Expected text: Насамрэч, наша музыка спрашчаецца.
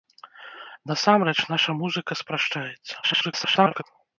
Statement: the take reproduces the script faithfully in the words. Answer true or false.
false